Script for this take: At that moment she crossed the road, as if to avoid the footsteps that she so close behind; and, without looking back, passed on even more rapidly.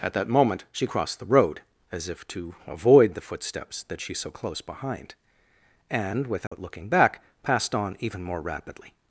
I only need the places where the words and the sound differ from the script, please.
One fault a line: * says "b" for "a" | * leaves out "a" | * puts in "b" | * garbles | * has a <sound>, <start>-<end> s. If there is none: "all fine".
* has a dropout, 6.5-6.5 s